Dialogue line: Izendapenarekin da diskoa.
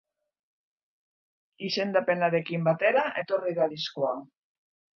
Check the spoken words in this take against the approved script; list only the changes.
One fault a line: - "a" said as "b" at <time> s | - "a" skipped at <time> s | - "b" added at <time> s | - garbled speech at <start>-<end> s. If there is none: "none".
- "batera etorri" added at 2.7 s